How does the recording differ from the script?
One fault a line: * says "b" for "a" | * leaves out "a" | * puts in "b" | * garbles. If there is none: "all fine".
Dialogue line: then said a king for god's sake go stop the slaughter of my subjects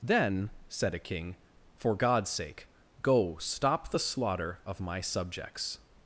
all fine